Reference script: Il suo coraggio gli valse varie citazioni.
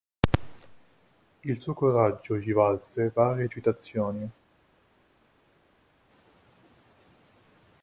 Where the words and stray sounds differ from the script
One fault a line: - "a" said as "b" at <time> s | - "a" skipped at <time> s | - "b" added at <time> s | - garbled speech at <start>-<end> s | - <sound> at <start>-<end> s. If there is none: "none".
none